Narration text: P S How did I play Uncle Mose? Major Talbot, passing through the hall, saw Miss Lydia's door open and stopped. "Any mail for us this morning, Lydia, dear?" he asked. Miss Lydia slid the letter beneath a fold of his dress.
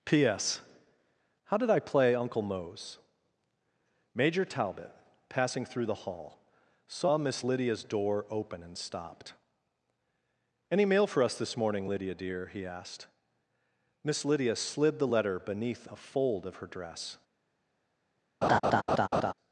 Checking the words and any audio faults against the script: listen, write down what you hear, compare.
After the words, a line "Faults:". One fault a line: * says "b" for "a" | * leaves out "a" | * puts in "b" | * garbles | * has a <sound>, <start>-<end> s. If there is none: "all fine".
P S How did I play Uncle Mose? Major Talbot, passing through the hall, saw Miss Lydia's door open and stopped. "Any mail for us this morning, Lydia, dear?" he asked. Miss Lydia slid the letter beneath a fold of her dress.
Faults:
* says "her" for "his"
* has a laugh, 18.4-19.3 s